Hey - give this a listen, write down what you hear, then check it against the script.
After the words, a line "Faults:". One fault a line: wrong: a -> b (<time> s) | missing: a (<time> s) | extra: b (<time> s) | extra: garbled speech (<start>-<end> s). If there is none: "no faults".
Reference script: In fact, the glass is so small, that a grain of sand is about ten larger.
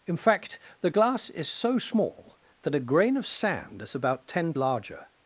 In fact, the glass is so small, that a grain of sand is about ten larger.
Faults:
no faults